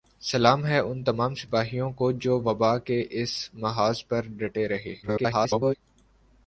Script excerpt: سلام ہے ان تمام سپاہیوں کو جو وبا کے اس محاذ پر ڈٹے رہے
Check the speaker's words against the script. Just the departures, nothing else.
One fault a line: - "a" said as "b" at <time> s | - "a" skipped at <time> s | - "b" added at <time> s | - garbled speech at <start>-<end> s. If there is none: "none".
- garbled speech at 5.0-5.7 s